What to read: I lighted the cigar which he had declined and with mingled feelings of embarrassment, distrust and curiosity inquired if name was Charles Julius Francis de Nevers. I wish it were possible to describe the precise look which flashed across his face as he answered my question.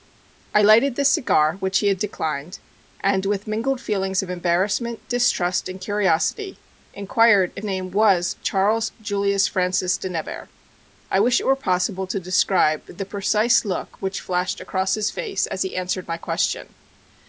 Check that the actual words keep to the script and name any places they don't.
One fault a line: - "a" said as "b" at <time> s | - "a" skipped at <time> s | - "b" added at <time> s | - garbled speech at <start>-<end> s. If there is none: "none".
none